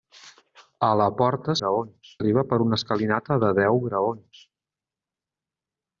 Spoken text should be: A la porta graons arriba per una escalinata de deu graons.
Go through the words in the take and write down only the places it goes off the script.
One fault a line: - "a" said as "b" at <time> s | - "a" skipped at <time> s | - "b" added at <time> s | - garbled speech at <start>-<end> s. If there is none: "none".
none